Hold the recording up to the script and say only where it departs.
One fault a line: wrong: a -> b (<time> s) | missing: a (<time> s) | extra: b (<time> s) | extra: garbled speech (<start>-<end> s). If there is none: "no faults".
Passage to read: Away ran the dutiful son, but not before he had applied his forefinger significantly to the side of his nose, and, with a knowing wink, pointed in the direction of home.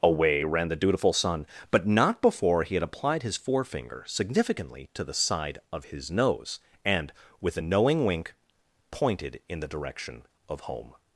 no faults